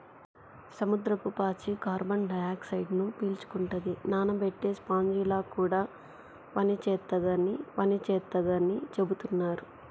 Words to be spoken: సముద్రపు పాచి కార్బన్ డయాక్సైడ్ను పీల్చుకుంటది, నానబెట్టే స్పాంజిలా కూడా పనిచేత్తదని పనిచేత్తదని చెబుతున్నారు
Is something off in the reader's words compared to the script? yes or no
no